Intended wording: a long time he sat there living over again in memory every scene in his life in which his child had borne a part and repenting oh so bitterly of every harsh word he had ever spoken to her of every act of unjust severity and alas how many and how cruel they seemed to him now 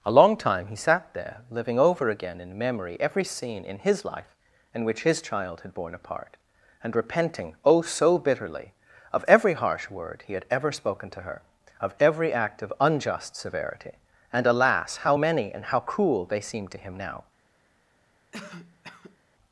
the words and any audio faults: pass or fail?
fail